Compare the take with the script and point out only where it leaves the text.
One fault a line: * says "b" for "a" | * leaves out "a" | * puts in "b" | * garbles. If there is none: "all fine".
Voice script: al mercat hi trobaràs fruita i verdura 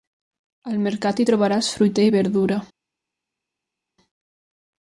all fine